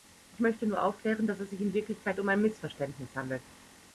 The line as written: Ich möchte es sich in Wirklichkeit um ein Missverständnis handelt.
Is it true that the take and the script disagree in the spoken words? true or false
true